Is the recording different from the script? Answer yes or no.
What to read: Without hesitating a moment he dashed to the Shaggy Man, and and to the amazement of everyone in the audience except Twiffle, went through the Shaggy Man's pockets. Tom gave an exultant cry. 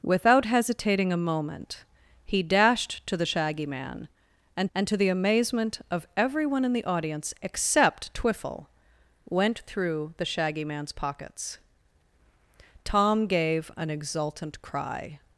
no